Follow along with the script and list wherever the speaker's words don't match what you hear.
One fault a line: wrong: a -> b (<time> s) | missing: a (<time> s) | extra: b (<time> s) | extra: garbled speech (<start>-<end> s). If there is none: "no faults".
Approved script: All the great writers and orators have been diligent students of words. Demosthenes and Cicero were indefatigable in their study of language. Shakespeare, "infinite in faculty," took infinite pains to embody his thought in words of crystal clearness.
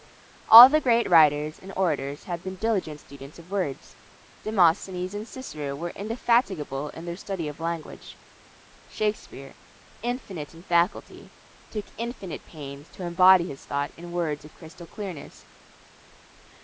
no faults